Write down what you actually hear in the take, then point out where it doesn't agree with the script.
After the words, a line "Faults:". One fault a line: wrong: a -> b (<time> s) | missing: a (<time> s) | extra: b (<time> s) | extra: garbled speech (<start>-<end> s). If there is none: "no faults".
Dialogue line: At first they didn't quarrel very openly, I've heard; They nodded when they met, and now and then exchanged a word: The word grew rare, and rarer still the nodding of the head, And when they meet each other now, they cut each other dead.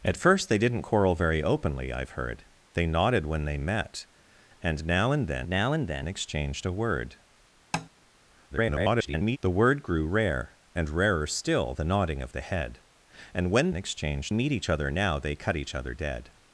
At first they didn't quarrel very openly, I've heard; They nodded when they met, and now and then now and then exchanged a word: [garbled] The word grew rare, and rarer still the nodding of the head, And when exchanged meet each other now, they cut each other dead.
Faults:
extra: now and then (5.5 s)
extra: garbled speech (8.5-9.4 s)
wrong: they -> exchanged (13.7 s)